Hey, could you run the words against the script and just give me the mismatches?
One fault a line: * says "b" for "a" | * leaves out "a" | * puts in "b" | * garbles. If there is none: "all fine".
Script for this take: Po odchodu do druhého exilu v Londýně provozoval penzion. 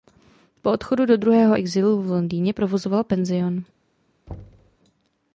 all fine